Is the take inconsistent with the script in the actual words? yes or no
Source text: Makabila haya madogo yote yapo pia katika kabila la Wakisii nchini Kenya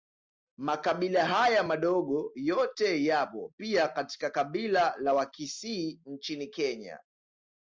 no